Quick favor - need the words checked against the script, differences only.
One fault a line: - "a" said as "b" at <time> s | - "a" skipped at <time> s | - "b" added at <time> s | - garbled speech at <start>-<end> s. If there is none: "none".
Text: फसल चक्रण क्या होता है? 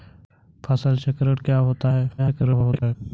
- garbled speech at 2.2-2.9 s